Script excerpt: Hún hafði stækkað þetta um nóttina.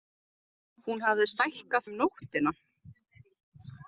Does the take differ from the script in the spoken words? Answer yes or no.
yes